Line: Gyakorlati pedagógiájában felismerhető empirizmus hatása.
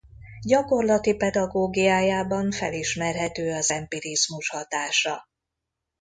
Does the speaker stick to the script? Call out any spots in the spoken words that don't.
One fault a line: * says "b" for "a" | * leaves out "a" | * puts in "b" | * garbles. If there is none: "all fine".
* puts in "az"